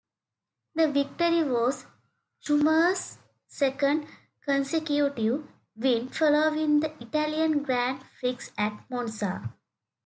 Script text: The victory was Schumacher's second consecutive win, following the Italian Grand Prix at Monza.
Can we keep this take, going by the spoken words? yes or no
yes